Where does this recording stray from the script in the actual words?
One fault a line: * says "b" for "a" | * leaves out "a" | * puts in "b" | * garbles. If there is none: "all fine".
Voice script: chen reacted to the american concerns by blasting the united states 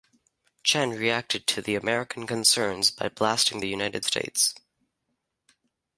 all fine